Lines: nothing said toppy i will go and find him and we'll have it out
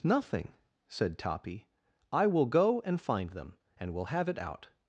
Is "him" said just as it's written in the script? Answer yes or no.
no